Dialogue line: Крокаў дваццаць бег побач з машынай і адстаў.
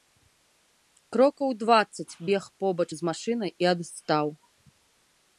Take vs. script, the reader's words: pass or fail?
pass